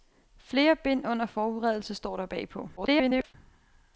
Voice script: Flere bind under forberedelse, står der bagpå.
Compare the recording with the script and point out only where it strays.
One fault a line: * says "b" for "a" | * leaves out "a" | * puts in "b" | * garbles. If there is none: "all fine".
* garbles